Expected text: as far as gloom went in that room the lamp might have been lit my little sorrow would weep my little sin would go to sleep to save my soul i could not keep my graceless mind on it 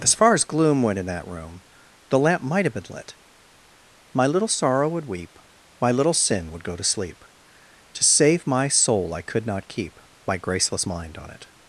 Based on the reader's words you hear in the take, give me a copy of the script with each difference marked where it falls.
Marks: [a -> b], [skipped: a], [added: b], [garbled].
as far as gloom went in that room the lamp might have been lit my little sorrow would weep my little sin would go to sleep to save my soul i could not keep my graceless mind on it